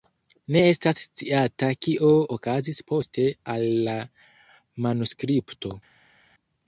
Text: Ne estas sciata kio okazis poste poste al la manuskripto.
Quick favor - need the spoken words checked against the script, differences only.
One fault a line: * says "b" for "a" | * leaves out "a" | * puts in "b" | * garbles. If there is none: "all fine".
* leaves out "poste"